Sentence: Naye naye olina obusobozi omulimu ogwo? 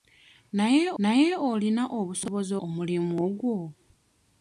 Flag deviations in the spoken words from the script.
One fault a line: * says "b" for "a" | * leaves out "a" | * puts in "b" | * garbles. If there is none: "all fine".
all fine